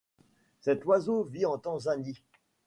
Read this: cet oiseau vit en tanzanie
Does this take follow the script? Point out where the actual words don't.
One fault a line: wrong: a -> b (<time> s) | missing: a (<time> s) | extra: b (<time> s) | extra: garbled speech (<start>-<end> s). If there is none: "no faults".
no faults